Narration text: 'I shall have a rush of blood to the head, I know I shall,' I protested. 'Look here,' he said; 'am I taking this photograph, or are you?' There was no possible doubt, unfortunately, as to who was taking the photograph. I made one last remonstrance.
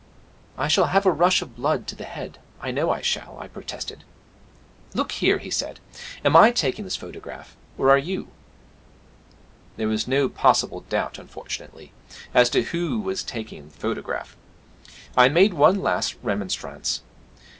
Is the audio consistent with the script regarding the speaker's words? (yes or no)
yes